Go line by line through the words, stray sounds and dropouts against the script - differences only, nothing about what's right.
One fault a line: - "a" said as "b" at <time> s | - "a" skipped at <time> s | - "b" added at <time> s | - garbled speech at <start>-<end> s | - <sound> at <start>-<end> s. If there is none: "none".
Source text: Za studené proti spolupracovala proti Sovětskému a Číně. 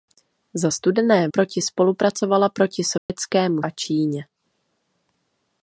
- dropout at 3.0-3.1 s